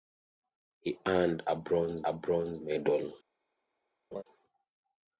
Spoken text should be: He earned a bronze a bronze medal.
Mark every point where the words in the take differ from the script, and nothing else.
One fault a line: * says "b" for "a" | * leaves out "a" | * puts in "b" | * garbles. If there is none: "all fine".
all fine